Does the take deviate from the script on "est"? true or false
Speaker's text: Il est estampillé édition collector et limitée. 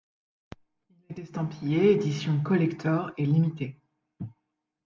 false